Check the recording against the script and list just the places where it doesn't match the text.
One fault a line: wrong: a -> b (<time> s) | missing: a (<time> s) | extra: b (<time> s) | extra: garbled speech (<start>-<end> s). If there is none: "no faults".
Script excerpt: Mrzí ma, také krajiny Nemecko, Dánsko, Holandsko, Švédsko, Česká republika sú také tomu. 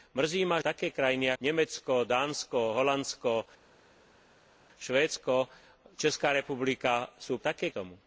no faults